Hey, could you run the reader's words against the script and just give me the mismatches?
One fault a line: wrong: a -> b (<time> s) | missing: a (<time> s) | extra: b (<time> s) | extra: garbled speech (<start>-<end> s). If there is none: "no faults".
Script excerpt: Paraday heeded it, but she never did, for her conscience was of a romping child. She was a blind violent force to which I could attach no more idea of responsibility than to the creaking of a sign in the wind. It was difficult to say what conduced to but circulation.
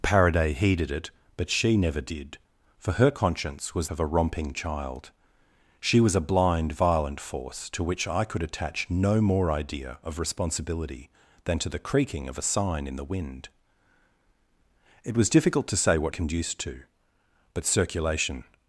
no faults